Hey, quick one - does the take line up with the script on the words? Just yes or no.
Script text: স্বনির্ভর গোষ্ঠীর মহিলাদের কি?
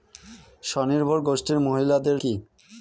yes